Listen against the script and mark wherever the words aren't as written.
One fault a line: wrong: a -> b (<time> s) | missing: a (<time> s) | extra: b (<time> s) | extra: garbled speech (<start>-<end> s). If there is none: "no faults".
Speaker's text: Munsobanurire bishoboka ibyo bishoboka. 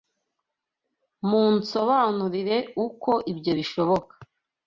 wrong: bishoboka -> uko (2.9 s)